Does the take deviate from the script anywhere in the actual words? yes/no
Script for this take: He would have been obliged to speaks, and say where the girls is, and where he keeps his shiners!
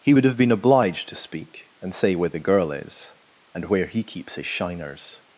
yes